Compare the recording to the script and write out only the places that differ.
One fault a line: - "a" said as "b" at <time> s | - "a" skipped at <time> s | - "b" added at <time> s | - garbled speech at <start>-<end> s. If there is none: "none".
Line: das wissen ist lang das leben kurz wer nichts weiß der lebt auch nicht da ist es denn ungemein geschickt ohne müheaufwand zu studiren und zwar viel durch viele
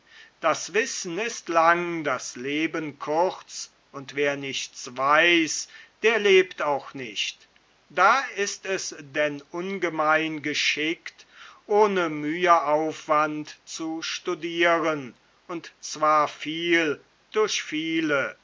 - "und" added at 3.9 s